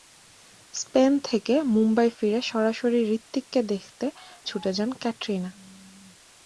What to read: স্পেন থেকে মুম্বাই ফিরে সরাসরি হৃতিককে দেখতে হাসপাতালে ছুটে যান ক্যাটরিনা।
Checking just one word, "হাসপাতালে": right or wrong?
wrong